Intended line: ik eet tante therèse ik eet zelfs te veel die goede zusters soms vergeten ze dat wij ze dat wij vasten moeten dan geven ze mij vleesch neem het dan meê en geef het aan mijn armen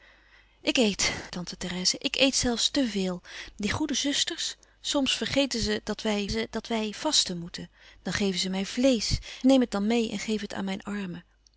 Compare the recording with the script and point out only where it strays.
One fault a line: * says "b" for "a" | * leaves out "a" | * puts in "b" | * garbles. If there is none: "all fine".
all fine